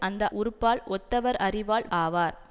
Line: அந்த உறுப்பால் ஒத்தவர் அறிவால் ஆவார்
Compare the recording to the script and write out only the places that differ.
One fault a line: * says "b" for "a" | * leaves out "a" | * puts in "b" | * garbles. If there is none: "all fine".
all fine